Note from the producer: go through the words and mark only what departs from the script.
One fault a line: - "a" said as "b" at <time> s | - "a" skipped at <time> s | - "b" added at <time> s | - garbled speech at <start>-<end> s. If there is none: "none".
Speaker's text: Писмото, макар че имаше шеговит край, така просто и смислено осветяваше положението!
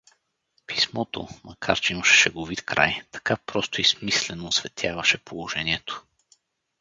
none